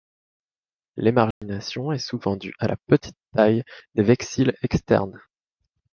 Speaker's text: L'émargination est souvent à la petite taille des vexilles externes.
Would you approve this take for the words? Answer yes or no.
no